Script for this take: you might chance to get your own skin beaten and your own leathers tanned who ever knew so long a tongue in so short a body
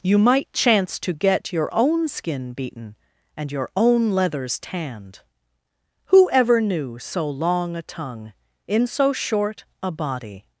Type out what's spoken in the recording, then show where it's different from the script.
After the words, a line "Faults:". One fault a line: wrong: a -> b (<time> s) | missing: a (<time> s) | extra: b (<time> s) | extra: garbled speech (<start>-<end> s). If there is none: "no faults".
you might chance to get your own skin beaten and your own leathers tanned who ever knew so long a tongue in so short a body
Faults:
no faults